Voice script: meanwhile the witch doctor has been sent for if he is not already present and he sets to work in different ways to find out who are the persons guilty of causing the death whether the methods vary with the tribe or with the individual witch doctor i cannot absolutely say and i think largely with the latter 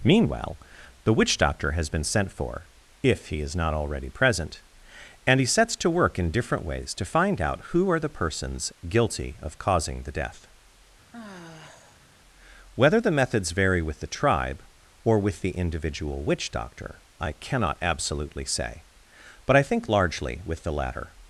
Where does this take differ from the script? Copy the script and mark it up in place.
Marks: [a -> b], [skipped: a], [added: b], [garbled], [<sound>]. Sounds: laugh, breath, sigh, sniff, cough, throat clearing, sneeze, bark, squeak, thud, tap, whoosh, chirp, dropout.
meanwhile the witch doctor has been sent for if he is not already present and he sets to work in different ways to find out who are the persons guilty of causing the death [sigh] whether the methods vary with the tribe or with the individual witch doctor i cannot absolutely say [and -> but] i think largely with the latter